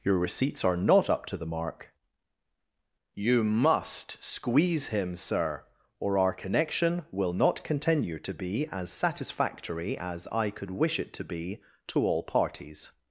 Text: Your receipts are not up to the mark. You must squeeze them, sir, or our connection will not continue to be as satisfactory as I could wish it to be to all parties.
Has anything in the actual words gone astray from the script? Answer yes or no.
yes